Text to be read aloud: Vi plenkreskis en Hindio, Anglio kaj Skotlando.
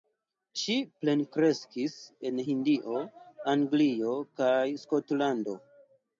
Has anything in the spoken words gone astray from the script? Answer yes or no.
yes